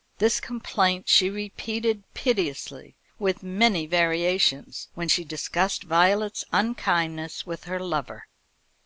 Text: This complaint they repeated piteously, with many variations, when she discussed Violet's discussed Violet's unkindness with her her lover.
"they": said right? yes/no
no